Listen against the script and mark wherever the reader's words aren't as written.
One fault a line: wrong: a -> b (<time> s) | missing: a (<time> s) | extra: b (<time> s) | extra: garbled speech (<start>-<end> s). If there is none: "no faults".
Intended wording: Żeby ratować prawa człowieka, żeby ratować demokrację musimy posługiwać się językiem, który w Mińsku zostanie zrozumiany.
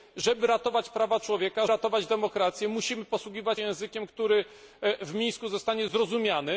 missing: żeby (1.7 s)
missing: się (3.6 s)